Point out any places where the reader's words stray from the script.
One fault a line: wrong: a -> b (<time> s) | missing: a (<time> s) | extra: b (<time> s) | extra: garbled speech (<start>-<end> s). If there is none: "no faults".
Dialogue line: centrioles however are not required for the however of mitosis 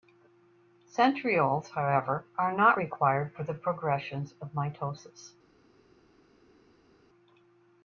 wrong: however -> progression (3.5 s)